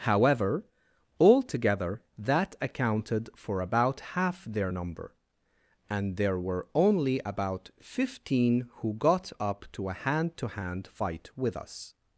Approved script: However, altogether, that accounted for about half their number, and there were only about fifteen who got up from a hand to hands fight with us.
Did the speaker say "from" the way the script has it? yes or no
no